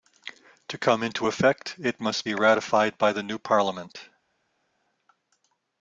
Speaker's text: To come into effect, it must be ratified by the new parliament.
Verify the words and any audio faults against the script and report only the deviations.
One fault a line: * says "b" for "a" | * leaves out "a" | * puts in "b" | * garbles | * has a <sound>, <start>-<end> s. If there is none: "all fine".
all fine